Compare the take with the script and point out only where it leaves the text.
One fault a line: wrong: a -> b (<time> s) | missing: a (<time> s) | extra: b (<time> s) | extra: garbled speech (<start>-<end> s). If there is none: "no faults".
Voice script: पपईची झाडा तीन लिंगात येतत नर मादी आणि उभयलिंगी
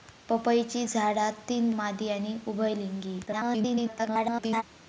missing: लिंगात येतत नर (1.7 s)
extra: garbled speech (3.3-4.6 s)